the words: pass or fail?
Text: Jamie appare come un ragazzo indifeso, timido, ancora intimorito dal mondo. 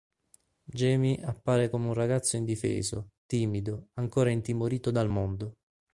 pass